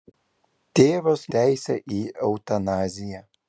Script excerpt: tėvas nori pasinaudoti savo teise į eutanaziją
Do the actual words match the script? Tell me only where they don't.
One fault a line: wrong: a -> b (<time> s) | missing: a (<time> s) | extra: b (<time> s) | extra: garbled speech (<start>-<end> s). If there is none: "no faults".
missing: nori pasinaudoti savo (1.2 s)